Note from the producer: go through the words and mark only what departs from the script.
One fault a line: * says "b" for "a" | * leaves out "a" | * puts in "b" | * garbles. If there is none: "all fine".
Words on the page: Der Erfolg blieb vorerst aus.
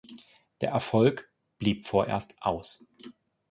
all fine